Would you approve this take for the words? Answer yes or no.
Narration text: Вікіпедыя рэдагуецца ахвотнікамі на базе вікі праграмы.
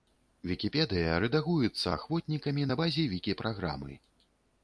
yes